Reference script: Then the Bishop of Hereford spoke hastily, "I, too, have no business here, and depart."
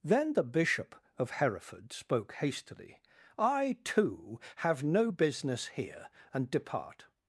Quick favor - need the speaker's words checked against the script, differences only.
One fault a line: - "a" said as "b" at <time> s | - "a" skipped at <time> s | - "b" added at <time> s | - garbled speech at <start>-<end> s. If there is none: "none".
none